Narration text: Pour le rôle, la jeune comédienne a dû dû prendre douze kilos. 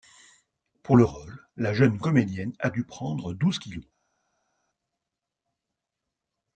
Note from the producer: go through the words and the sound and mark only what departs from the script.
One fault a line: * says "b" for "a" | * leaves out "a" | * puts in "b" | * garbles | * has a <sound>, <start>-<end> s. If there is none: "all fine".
* leaves out "dû"